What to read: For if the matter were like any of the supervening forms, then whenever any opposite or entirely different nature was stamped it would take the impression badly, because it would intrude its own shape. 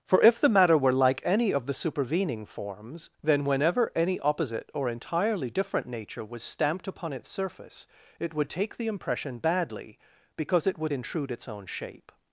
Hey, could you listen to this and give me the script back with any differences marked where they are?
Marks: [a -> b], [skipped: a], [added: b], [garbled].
For if the matter were like any of the supervening forms, then whenever any opposite or entirely different nature was stamped [added: upon its surface] it would take the impression badly, because it would intrude its own shape.